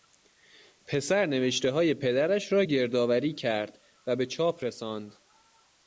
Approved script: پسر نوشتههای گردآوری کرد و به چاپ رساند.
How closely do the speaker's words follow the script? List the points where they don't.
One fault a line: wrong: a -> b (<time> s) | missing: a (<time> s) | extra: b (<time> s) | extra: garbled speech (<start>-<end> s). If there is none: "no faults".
extra: پدرش را (1.9 s)